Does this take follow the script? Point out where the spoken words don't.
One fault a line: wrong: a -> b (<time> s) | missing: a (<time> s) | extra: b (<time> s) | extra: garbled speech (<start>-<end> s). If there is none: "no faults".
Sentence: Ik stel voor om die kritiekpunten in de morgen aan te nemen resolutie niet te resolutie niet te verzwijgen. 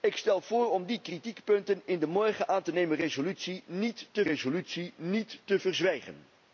no faults